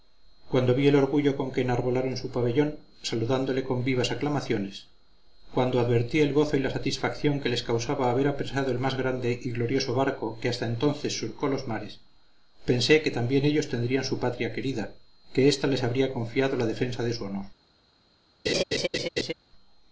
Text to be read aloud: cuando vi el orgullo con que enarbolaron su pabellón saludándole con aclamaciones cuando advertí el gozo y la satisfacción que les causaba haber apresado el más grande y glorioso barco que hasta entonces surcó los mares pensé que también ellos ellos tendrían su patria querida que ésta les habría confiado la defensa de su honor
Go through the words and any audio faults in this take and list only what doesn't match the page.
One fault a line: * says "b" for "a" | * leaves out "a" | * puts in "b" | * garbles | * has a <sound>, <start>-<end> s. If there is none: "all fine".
* puts in "vivas"
* leaves out "ellos"
* has a laugh, 18.5-19.3 s